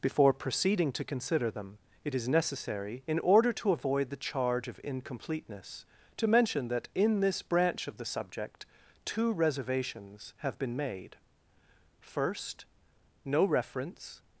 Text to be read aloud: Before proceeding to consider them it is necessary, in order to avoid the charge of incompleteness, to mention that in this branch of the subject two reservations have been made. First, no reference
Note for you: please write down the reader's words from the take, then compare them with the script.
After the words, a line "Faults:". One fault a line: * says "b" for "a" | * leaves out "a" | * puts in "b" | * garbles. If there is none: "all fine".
Before proceeding to consider them it is necessary, in order to avoid the charge of incompleteness, to mention that in this branch of the subject two reservations have been made. First, no reference
Faults:
all fine